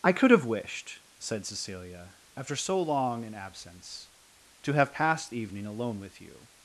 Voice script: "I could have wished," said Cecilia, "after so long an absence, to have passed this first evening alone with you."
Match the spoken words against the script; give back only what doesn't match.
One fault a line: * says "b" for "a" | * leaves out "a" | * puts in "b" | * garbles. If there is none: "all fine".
* leaves out "this first"